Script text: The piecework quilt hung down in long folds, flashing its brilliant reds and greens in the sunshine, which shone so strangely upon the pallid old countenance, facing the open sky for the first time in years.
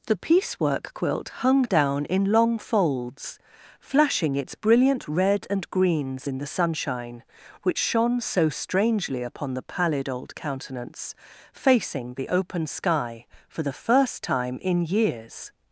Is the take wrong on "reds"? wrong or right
wrong